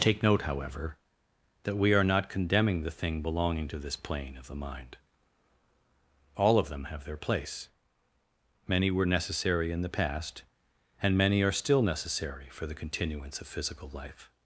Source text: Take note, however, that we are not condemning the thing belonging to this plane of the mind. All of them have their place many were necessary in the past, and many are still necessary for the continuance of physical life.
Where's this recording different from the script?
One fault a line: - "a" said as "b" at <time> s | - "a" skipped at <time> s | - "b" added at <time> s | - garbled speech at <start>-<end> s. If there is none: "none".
none